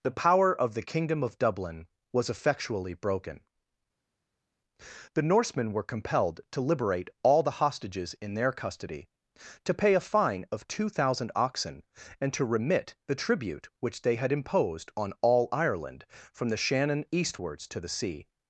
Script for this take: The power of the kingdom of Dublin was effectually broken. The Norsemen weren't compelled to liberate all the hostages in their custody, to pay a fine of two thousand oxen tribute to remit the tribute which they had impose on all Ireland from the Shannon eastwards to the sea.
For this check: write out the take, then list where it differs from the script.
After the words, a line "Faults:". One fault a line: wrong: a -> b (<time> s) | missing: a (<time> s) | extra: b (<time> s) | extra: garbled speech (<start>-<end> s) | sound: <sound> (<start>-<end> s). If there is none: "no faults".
The power of the kingdom of Dublin was effectually broken. The Norsemen were compelled to liberate all the hostages in their custody, to pay a fine of two thousand oxen and to remit the tribute which they had imposed on all Ireland from the Shannon eastwards to the sea.
Faults:
wrong: weren't -> were (5.7 s)
wrong: tribute -> and (12.2 s)
wrong: impose -> imposed (14.3 s)